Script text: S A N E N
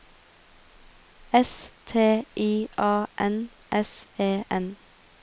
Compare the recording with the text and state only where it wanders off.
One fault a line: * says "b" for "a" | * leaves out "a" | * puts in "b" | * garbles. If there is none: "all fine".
* puts in "T I"
* puts in "S"